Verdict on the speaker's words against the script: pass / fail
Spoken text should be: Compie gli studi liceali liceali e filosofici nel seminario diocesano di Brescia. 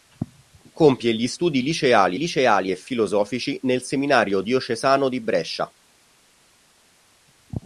pass